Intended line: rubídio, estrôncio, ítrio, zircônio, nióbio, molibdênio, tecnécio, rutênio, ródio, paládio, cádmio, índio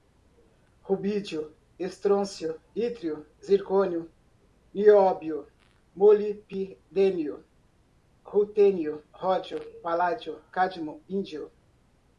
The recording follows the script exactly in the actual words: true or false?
false